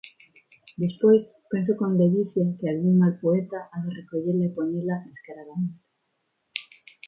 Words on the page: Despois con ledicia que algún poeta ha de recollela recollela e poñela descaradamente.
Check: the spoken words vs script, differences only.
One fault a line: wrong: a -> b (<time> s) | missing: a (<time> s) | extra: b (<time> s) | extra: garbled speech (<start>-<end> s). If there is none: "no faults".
extra: penso (1.5 s)
extra: mal (3.0 s)
missing: recollela (4.4 s)